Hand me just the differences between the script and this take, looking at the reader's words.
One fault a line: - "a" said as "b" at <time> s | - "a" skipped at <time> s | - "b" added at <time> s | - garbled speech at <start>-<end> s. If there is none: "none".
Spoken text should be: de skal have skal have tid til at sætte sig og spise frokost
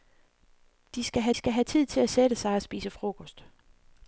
none